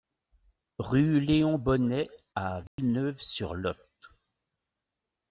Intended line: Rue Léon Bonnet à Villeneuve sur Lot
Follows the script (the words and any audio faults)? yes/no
no